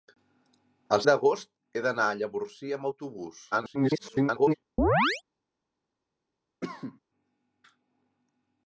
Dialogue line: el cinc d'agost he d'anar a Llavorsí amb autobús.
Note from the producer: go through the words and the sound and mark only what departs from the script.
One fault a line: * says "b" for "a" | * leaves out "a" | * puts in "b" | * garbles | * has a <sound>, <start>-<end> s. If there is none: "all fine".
* leaves out "cinc"
* garbles
* has a chirp, 4.8-5.2 s
* has a cough, 6.6-7.0 s